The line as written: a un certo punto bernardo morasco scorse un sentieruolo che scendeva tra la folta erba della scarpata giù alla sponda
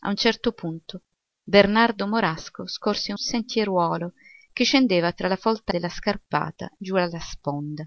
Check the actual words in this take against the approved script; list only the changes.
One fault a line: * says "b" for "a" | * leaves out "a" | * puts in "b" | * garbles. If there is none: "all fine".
* leaves out "un"
* leaves out "erba"